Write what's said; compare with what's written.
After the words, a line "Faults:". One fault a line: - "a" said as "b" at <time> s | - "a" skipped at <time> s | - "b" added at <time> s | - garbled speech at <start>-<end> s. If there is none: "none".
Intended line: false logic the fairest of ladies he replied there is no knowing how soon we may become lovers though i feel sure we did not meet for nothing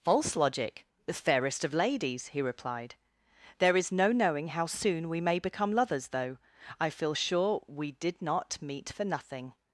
false logic the fairest of ladies he replied there is no knowing how soon we may become lovers though i feel sure we did not meet for nothing
Faults:
none